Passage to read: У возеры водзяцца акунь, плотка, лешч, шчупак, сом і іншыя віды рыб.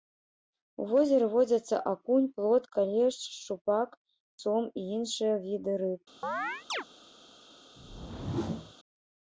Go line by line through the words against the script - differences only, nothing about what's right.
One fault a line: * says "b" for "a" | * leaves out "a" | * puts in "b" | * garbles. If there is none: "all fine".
all fine